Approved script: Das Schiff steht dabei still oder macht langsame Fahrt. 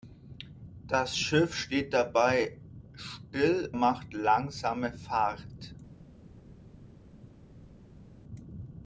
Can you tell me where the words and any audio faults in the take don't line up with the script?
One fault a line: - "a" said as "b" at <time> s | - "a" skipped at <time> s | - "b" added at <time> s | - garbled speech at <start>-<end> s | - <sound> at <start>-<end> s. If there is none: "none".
- "oder" skipped at 3.7 s